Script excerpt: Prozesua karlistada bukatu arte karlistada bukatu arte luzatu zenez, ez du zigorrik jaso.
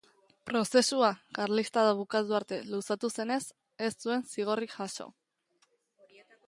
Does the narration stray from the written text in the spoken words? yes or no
yes